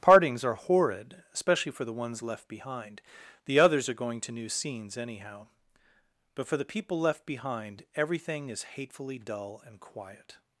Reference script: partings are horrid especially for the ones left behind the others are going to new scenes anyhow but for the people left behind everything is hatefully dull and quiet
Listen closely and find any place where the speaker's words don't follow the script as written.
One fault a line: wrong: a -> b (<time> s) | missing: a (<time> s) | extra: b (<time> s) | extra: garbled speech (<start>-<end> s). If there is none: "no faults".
no faults